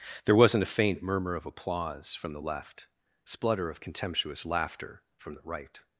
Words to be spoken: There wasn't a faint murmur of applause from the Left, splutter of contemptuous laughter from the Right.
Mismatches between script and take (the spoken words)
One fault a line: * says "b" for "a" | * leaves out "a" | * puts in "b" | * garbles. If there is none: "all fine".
all fine